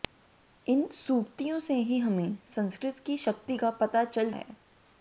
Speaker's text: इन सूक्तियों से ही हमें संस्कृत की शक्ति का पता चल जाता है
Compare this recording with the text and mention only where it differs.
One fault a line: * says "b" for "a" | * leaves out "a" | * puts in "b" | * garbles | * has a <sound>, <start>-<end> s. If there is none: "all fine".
* leaves out "जाता"